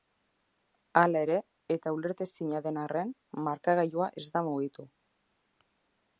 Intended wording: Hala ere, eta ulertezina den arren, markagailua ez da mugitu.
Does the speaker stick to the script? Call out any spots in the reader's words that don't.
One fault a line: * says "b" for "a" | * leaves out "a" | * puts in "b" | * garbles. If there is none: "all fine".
all fine